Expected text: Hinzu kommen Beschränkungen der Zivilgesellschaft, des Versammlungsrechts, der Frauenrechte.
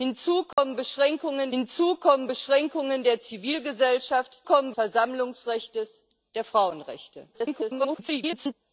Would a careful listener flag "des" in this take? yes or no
yes